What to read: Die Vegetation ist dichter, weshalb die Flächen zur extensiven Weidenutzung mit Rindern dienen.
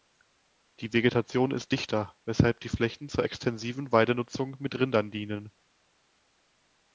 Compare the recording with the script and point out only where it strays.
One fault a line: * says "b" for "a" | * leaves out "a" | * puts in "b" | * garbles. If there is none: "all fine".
all fine